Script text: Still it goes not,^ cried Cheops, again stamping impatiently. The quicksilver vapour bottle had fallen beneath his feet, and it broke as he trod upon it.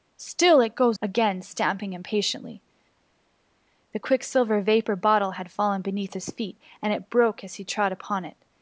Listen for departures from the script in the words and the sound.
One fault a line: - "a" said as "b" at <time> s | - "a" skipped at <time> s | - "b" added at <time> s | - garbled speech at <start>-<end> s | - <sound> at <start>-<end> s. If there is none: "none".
- "not cried Cheops" skipped at 1.0 s